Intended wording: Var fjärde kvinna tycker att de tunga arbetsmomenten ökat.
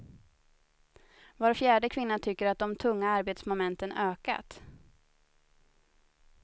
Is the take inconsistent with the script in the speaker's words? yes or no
no